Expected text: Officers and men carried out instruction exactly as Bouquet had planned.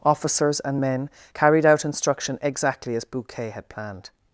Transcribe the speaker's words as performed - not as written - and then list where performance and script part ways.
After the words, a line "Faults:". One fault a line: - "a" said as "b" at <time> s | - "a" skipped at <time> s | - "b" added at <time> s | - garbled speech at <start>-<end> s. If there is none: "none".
Officers and men carried out instruction exactly as Bouquet had planned.
Faults:
none